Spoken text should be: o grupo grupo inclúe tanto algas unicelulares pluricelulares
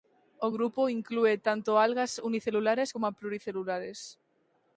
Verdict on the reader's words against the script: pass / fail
fail